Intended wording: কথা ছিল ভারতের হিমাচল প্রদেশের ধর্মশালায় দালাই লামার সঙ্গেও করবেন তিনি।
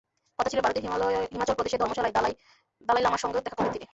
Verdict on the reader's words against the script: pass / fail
fail